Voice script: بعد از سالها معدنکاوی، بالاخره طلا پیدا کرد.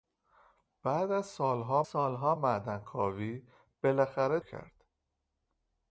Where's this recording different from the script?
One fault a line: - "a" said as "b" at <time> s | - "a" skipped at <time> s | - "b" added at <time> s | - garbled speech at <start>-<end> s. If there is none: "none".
- "سالها" added at 1.8 s
- "طلا پیدا" skipped at 4.4 s